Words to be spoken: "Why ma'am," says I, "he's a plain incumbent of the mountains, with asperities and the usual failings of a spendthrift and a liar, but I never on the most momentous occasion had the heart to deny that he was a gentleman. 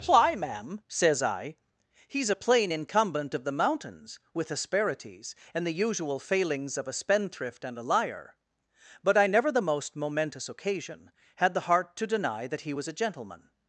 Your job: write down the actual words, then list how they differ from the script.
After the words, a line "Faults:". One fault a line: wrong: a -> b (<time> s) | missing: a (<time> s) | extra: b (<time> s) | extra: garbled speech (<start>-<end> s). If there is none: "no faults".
"Why ma'am," says I, "he's a plain incumbent of the mountains, with asperities and the usual failings of a spendthrift and a liar, but I never the most momentous occasion had the heart to deny that he was a gentleman.
Faults:
missing: on (9.5 s)